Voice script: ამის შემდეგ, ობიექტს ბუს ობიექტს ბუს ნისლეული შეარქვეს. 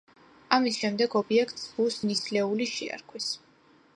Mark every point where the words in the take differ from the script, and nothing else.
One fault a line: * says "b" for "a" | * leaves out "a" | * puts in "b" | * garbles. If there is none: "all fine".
* leaves out "ობიექტს ბუს"